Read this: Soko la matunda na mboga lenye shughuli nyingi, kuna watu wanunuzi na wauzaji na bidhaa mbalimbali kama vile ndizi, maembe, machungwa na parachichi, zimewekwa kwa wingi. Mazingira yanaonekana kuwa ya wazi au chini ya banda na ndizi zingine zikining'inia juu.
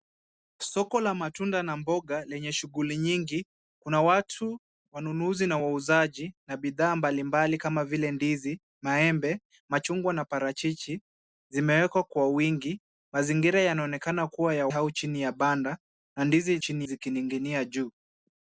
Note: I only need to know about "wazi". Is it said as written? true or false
false